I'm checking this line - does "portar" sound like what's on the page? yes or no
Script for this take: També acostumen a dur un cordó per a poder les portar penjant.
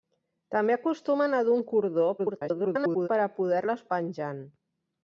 no